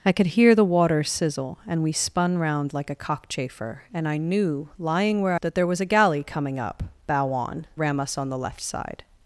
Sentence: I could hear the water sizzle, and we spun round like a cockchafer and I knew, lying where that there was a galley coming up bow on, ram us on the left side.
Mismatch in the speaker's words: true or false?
false